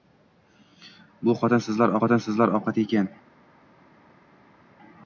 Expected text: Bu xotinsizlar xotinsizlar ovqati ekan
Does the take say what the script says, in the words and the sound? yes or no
yes